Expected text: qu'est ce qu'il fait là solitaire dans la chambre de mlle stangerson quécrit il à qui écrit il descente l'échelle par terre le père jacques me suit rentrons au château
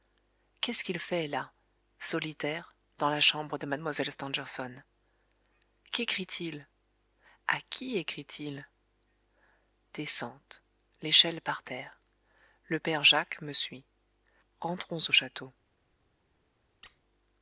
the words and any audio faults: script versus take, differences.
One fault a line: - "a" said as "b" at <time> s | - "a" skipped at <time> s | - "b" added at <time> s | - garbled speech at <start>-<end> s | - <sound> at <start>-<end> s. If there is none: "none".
- squeak at 16.8-17.0 s